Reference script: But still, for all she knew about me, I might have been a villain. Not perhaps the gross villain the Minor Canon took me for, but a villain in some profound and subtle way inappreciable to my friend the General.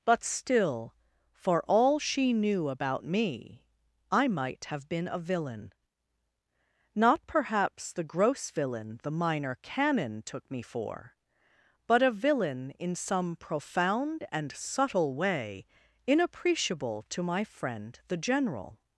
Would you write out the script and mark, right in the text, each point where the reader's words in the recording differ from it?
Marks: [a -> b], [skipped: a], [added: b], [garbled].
But still, for all she knew about me, I might have been a villain. Not perhaps the gross villain the Minor Canon took me for, but a villain in some profound and subtle way inappreciable to my friend the General.